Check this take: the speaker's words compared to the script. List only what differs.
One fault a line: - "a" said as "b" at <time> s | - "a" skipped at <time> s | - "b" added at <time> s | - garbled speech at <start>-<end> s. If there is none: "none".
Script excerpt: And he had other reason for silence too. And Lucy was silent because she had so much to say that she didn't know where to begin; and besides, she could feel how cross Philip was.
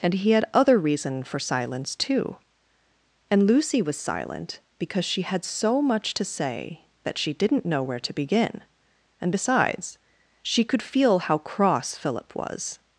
none